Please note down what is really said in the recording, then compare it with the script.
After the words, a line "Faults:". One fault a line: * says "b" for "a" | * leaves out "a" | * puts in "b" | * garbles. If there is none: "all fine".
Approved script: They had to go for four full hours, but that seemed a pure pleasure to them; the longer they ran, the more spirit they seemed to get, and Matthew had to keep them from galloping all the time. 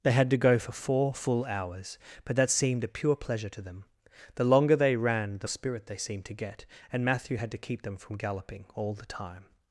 They had to go for four full hours, but that seemed a pure pleasure to them; the longer they ran, the spirit they seemed to get, and Matthew had to keep them from galloping all the time.
Faults:
* leaves out "more"